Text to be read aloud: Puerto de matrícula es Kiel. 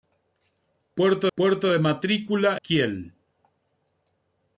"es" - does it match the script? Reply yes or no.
no